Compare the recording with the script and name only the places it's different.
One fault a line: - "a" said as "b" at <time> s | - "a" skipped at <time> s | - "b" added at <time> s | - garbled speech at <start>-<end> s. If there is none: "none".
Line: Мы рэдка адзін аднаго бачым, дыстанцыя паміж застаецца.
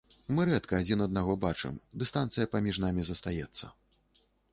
- "намі" added at 2.9 s